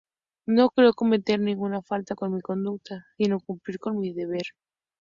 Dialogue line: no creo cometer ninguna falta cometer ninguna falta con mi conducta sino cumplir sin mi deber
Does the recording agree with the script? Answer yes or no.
no